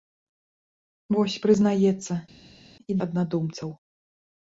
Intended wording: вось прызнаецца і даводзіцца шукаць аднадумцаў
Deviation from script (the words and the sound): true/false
true